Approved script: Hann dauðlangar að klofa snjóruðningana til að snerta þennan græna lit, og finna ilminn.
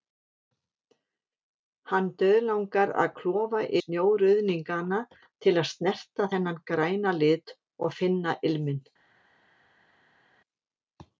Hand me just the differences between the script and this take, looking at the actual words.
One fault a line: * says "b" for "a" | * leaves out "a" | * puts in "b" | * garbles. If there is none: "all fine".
all fine